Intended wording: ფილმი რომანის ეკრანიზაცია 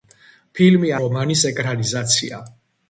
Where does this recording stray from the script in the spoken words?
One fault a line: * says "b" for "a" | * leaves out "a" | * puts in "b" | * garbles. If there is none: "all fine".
all fine